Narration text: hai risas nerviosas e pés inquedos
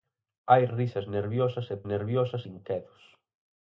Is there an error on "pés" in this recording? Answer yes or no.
yes